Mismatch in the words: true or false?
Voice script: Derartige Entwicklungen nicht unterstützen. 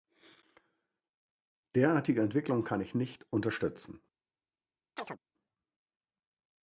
true